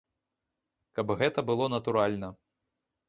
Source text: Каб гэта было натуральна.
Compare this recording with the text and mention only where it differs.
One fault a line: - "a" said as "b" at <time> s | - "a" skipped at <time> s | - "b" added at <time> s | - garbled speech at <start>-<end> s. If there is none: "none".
none